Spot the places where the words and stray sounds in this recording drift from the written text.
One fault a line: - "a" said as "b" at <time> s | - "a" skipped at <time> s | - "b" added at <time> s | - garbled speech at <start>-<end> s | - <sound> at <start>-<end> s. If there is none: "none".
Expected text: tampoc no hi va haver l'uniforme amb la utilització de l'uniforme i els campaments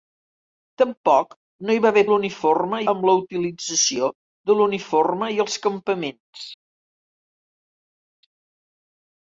none